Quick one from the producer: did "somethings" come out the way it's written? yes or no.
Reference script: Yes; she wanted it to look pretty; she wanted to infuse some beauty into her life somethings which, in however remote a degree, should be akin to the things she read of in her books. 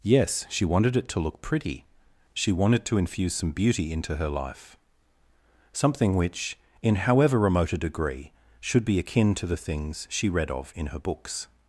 no